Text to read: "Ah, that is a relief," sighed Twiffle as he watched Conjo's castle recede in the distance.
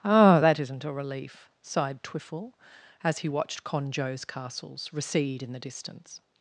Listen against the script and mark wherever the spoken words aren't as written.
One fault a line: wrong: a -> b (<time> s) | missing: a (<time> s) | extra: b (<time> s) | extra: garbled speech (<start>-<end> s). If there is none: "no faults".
wrong: is -> isn't (0.6 s)
wrong: castle -> castles (4.2 s)